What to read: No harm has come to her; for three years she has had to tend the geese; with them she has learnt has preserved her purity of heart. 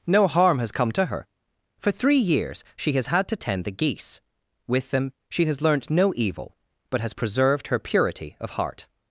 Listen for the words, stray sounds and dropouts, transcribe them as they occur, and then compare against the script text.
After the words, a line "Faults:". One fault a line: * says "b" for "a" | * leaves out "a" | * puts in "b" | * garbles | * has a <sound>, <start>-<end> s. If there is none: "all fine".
No harm has come to her; for three years she has had to tend the geese; with them she has learnt no evil, but has preserved her purity of heart.
Faults:
* puts in "no evil but"